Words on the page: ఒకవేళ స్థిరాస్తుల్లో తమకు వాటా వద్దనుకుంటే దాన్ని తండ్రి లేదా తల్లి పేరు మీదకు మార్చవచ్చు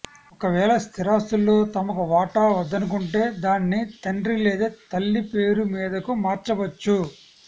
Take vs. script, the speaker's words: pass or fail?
pass